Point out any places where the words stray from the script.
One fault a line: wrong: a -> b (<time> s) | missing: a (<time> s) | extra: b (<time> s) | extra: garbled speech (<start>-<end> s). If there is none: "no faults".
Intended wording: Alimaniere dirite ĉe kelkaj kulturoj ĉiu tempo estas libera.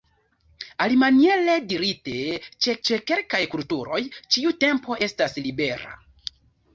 extra: ĉe (2.9 s)